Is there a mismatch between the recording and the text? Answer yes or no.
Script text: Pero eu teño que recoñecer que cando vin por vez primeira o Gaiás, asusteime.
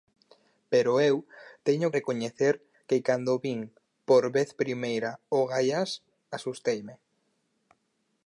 yes